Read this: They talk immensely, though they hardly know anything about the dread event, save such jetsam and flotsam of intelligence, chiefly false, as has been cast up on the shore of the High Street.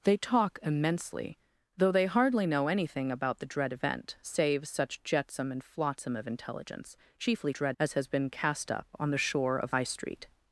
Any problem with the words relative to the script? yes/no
yes